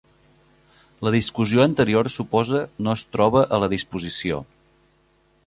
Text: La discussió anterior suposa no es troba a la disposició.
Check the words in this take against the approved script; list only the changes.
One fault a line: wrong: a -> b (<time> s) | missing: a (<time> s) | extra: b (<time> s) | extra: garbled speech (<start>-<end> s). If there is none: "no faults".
no faults